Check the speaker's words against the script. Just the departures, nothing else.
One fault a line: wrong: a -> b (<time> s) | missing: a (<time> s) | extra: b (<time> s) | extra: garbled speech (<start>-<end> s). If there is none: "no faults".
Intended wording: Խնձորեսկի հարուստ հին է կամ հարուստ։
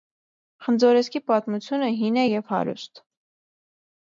wrong: հարուստ -> պատմությունը (1.3 s)
wrong: կամ -> և (2.2 s)